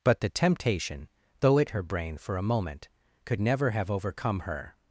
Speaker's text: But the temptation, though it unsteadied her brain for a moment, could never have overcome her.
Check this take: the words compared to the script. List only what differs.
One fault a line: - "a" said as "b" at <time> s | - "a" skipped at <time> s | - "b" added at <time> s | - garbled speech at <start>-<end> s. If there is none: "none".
- "unsteadied" skipped at 1.7 s